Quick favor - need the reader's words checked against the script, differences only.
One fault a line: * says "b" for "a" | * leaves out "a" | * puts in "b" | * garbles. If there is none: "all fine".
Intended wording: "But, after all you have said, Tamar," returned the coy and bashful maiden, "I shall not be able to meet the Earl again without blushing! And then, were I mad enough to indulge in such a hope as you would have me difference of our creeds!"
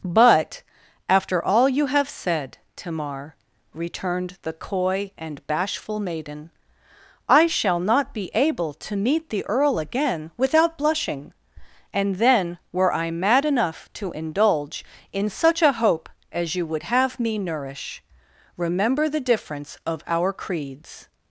* puts in "nourish remember the"